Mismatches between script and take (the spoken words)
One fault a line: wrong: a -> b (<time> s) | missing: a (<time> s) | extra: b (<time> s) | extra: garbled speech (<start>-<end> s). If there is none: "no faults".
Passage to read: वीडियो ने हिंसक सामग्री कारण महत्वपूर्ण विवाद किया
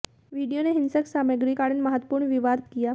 no faults